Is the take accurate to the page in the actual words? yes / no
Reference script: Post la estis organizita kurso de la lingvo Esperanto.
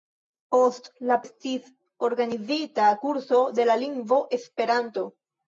yes